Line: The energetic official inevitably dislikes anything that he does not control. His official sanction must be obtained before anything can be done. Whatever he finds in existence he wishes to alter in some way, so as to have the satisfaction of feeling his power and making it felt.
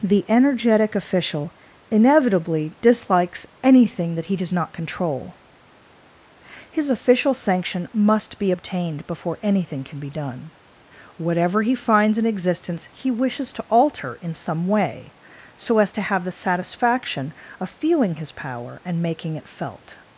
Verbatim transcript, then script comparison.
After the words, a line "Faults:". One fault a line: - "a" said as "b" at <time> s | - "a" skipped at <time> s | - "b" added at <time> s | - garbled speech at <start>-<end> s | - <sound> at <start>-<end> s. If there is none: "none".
The energetic official inevitably dislikes anything that he does not control. His official sanction must be obtained before anything can be done. Whatever he finds in existence he wishes to alter in some way, so as to have the satisfaction of feeling his power and making it felt.
Faults:
none